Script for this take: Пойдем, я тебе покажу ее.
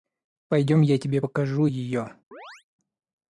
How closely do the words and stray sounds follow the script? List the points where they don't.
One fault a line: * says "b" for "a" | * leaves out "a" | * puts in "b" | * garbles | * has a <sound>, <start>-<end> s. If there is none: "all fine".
* has a chirp, 2.3-2.6 s